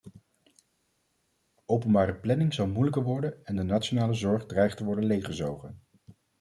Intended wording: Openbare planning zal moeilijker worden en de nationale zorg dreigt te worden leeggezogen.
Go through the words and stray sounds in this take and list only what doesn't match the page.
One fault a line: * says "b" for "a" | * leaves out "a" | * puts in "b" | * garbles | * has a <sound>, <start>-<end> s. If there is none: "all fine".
all fine